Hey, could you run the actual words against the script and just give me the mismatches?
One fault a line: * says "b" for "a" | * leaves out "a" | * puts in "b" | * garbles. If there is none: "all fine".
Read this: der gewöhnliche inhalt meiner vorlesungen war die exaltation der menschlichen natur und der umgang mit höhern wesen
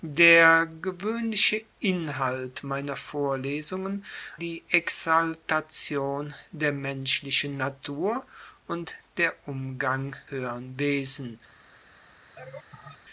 * leaves out "war"
* leaves out "mit"